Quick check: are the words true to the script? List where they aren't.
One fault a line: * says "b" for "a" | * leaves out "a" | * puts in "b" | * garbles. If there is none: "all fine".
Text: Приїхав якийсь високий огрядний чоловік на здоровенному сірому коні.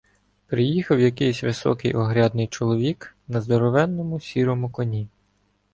all fine